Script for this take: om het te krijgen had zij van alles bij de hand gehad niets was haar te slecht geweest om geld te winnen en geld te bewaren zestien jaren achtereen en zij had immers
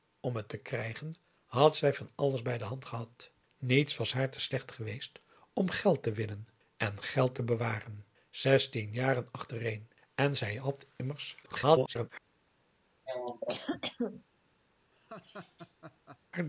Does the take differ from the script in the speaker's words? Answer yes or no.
yes